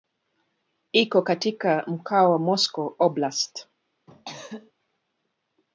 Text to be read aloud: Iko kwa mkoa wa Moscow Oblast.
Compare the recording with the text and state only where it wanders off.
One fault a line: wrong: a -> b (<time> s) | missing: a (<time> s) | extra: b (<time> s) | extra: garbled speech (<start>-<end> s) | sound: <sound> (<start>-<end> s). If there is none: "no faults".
wrong: kwa -> katika (1.2 s)
sound: cough (4.1-4.7 s)